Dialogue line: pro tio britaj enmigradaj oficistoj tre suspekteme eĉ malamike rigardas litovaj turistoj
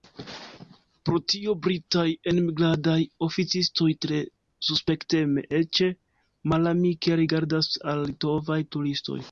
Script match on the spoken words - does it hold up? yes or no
no